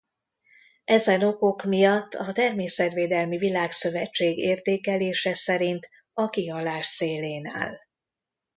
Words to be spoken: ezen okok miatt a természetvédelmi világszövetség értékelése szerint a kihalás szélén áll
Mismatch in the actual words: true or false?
false